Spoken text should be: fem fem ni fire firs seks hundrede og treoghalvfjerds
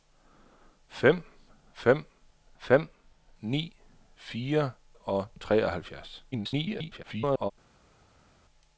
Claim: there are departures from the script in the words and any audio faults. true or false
true